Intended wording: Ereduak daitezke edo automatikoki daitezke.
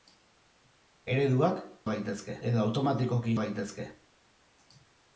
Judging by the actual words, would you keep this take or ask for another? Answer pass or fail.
pass